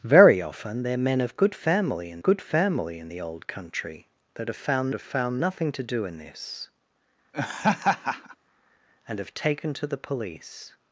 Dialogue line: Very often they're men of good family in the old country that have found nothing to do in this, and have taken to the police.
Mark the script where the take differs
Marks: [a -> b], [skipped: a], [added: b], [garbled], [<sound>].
Very often they're men of good family in [added: good family in] the old country that have found [added: have found] nothing to do in this, [laugh] and have taken to the police.